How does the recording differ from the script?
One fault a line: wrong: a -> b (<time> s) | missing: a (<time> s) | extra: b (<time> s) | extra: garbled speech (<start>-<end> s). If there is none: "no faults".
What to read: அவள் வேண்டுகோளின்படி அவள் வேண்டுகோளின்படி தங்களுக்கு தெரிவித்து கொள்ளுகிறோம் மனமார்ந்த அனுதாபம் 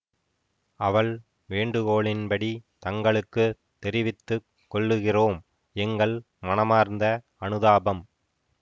missing: அவள் வேண்டுகோளின்படி (2.5 s)
extra: எங்கள் (5.8 s)